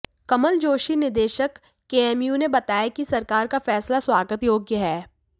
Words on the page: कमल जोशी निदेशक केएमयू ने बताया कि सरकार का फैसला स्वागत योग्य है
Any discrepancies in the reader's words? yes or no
no